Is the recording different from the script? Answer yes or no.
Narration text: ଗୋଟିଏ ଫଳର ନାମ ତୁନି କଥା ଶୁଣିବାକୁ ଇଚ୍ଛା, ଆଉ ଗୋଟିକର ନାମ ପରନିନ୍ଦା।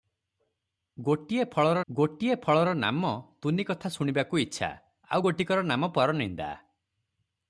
yes